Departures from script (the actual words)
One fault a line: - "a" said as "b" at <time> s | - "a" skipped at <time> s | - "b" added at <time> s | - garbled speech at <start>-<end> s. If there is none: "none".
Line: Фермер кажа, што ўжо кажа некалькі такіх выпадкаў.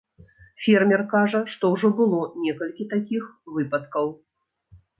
- "кажа" said as "было" at 2.0 s